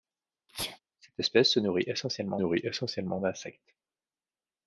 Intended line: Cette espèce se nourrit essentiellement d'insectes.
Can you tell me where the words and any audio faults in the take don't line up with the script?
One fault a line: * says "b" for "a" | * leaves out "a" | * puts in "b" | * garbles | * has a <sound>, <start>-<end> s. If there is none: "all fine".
* has a sneeze, 0.5-0.8 s
* puts in "nourrit essentiellement"